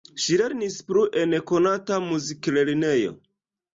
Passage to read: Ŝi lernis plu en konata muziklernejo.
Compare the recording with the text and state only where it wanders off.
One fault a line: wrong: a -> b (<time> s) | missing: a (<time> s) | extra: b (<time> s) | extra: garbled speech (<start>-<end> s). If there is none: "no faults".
no faults